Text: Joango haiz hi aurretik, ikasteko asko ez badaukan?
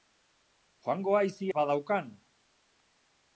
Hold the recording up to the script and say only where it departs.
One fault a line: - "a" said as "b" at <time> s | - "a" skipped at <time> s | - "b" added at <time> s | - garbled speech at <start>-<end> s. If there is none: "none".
- "aurretik ikasteko asko" skipped at 1.5 s